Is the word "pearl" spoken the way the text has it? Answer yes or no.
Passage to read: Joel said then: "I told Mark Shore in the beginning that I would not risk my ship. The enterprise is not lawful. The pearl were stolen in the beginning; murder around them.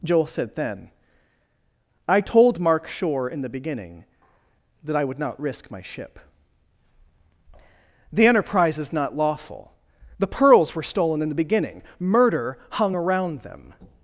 no